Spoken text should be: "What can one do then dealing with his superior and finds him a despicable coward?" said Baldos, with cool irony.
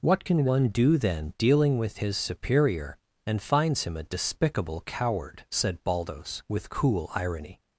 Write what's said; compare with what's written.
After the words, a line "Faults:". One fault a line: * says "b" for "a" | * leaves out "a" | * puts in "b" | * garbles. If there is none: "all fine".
"What can one do then dealing with his superior and finds him a despicable coward?" said Baldos, with cool irony.
Faults:
all fine